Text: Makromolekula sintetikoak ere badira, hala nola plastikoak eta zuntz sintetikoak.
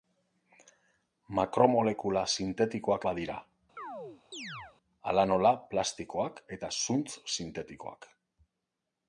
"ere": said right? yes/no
no